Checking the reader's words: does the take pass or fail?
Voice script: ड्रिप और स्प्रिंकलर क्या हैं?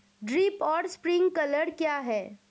pass